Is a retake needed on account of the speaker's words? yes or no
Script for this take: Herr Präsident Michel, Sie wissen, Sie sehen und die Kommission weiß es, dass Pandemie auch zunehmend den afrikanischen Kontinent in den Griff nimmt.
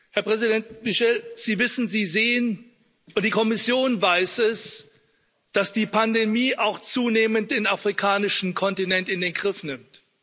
yes